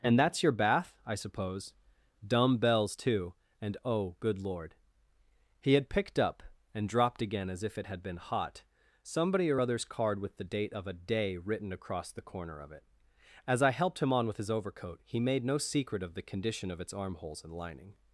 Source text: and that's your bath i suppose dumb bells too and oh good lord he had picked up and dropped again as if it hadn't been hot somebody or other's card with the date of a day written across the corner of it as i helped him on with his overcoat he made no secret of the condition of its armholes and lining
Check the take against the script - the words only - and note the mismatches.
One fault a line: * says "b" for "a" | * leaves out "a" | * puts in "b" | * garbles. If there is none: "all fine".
* says "had" for "hadn't"